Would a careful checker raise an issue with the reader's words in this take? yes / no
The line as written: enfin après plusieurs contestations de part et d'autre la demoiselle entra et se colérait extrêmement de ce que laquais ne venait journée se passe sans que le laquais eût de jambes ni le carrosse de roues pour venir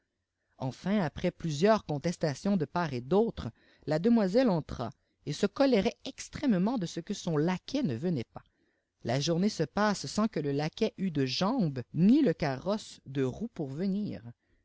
yes